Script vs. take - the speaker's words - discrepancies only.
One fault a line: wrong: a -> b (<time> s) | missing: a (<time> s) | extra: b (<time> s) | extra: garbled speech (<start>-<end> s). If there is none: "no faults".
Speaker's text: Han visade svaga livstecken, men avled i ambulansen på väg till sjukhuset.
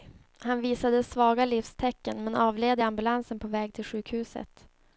no faults